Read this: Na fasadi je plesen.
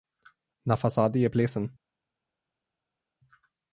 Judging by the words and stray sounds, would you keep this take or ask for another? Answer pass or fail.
pass